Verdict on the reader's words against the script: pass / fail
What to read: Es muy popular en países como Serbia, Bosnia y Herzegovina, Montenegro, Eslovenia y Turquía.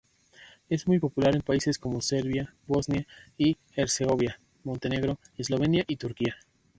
pass